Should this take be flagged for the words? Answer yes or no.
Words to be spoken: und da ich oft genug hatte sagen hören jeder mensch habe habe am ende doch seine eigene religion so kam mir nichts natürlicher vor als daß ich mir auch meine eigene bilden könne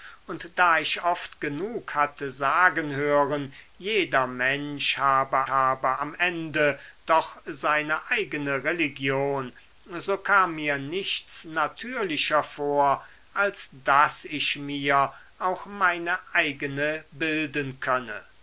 no